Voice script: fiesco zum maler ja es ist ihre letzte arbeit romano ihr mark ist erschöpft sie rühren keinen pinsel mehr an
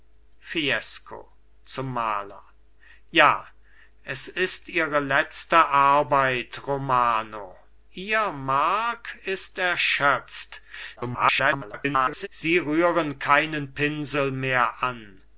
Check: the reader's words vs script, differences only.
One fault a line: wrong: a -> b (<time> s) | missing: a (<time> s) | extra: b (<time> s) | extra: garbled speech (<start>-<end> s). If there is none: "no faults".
extra: garbled speech (11.0-12.3 s)